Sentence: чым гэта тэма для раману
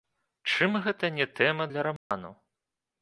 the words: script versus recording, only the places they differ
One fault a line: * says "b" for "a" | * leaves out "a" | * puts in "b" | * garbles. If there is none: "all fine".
* puts in "не"